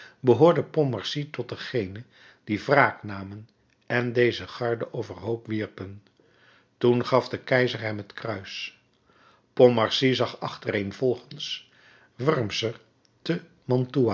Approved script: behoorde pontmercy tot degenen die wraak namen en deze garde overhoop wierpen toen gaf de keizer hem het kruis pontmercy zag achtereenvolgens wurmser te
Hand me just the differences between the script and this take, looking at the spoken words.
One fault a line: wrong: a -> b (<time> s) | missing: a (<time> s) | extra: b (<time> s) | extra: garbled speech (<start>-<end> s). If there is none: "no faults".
no faults